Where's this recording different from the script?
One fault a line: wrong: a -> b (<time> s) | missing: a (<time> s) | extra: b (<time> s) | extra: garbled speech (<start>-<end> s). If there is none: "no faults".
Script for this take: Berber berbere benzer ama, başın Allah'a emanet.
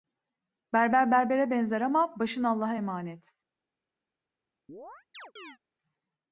no faults